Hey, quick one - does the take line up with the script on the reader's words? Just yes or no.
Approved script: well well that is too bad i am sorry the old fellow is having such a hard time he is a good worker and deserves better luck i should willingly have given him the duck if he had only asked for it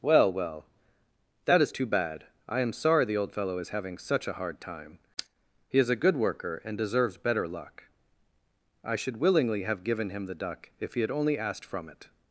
no